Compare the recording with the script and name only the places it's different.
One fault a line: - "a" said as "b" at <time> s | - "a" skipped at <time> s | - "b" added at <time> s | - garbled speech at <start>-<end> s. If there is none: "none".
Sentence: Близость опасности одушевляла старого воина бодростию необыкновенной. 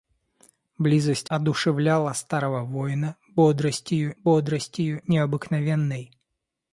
- "опасности" skipped at 1.3 s
- "бодростию" added at 4.2 s